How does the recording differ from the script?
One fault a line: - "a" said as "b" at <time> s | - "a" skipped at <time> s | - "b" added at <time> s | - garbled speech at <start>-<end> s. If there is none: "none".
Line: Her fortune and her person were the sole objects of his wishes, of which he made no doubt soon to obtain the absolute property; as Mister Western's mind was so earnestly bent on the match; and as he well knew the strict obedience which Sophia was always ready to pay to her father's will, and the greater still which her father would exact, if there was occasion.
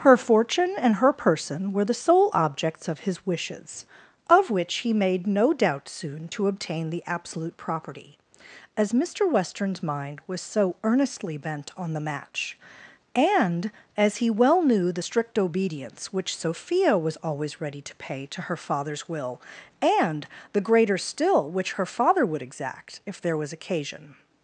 none